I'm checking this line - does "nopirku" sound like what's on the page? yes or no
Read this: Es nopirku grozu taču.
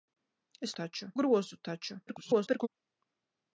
no